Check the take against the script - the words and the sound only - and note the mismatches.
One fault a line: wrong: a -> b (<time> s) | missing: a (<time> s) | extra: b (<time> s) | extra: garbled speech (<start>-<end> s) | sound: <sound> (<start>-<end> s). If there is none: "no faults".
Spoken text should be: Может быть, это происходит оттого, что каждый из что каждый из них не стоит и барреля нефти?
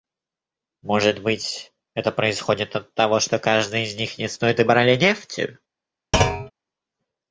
missing: что каждый из (4.0 s)
sound: thud (6.1-6.5 s)